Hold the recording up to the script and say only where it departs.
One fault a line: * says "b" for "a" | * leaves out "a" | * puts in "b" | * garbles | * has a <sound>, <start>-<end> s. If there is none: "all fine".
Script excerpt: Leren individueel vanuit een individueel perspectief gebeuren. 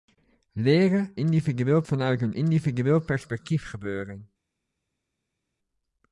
all fine